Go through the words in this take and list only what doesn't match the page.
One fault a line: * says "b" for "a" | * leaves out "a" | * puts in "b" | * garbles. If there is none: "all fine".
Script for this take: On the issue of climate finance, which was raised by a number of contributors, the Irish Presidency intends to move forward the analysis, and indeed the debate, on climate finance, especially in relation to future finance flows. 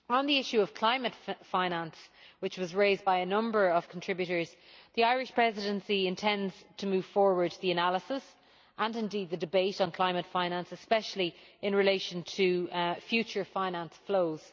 all fine